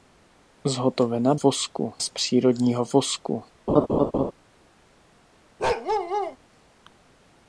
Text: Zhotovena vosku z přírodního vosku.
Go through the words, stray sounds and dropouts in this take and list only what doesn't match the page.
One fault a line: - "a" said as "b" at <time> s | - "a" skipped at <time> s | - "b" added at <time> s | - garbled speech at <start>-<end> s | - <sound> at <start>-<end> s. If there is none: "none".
- laugh at 3.7-4.3 s
- bark at 5.6-6.4 s